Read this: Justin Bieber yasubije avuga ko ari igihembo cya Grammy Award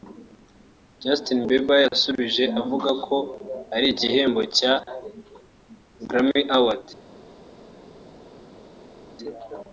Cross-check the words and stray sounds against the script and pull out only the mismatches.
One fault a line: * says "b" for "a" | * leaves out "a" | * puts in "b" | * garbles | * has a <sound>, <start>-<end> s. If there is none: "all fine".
all fine